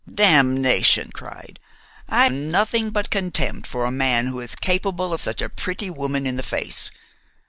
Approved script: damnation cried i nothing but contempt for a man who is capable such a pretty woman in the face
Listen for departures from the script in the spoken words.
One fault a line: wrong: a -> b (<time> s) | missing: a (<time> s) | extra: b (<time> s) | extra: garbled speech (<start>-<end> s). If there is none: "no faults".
no faults